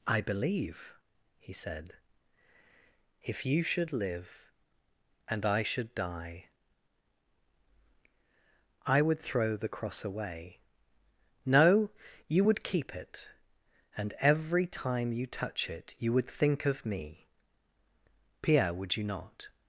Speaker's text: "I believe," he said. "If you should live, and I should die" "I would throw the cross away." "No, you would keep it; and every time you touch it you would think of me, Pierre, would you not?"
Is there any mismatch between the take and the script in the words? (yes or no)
no